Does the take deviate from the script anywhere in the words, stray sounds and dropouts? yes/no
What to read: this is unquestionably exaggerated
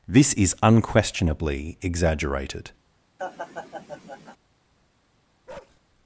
yes